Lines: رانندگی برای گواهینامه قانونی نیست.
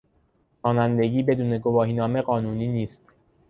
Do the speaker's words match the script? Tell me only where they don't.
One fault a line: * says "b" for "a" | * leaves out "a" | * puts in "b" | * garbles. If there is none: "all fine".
* says "بدون" for "برای"